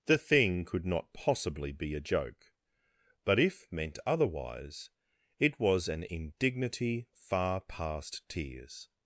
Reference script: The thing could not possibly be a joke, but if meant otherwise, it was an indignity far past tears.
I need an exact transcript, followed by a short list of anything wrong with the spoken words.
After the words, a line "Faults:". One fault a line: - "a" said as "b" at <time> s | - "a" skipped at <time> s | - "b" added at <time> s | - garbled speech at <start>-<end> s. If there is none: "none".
The thing could not possibly be a joke, but if meant otherwise, it was an indignity far past tears.
Faults:
none